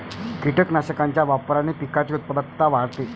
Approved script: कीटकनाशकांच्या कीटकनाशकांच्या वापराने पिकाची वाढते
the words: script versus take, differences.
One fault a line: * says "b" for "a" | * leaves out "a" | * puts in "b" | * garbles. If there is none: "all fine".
* leaves out "कीटकनाशकांच्या"
* puts in "उत्पादकता"